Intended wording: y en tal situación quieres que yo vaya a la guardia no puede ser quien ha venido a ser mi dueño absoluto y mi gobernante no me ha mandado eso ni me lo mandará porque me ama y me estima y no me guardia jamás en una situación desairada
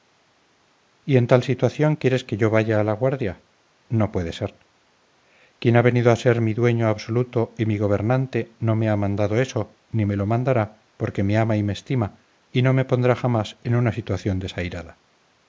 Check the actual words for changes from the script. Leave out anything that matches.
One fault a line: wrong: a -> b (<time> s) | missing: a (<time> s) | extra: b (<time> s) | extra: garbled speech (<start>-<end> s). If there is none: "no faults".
wrong: guardia -> pondrá (12.8 s)